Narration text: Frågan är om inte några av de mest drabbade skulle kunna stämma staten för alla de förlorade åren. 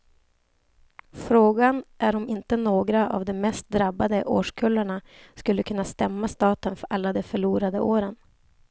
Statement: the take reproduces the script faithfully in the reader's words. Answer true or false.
false